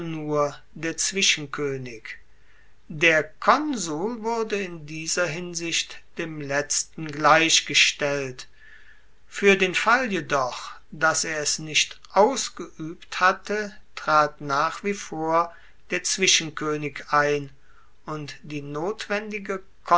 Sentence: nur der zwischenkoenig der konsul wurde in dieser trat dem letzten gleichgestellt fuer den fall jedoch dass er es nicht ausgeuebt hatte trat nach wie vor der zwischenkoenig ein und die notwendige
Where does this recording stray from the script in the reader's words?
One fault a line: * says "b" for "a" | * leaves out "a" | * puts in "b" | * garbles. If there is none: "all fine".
* says "hinsicht" for "trat"